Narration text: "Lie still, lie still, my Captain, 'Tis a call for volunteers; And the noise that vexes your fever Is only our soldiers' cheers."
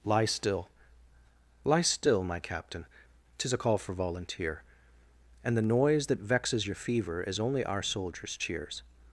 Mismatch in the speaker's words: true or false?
true